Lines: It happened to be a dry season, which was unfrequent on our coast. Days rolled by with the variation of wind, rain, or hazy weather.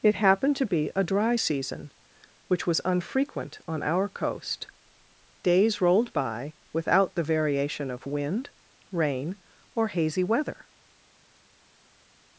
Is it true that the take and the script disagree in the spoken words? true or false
true